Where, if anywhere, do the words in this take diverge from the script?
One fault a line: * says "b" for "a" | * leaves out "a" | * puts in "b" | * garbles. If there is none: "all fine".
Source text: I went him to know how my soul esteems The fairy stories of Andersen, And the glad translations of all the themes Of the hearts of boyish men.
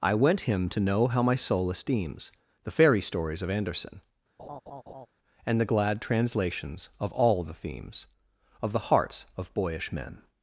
all fine